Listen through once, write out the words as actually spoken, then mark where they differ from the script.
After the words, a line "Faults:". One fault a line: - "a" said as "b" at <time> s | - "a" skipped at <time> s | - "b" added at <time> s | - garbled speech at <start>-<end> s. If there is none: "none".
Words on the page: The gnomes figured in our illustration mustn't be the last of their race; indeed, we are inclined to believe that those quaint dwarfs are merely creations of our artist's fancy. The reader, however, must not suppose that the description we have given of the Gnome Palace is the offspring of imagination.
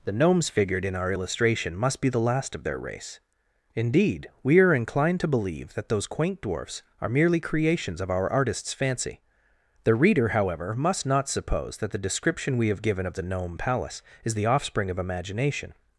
The gnomes figured in our illustration must be the last of their race; indeed, we are inclined to believe that those quaint dwarfs are merely creations of our artist's fancy. The reader, however, must not suppose that the description we have given of the Gnome Palace is the offspring of imagination.
Faults:
- "mustn't" said as "must" at 1.8 s